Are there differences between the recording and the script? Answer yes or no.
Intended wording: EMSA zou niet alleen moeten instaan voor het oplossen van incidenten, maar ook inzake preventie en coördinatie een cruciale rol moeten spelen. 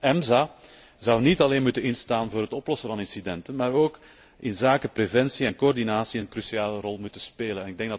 no